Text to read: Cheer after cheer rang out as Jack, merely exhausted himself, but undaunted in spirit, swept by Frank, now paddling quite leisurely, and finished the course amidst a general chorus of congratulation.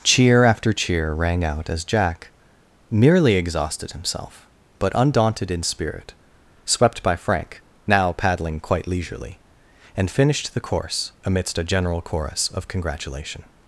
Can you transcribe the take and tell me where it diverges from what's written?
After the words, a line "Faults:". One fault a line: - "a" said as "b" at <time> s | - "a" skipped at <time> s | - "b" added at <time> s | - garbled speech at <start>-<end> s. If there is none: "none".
Cheer after cheer rang out as Jack, merely exhausted himself, but undaunted in spirit, swept by Frank, now paddling quite leisurely, and finished the course amidst a general chorus of congratulation.
Faults:
none